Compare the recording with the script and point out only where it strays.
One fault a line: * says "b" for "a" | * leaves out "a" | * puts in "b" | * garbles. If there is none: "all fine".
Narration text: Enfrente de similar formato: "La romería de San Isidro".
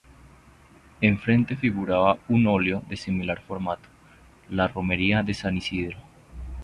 * puts in "figuraba un óleo"